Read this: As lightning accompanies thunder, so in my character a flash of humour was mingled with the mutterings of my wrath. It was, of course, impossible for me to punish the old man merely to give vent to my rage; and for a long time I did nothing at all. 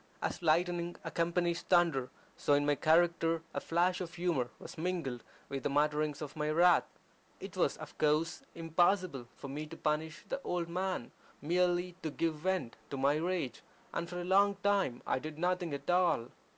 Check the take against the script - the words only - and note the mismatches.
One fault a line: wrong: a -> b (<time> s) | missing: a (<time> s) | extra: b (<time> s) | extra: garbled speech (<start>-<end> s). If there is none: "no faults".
no faults